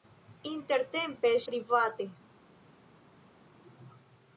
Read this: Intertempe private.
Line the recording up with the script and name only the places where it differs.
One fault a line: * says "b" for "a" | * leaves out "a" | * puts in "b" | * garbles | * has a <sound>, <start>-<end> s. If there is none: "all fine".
all fine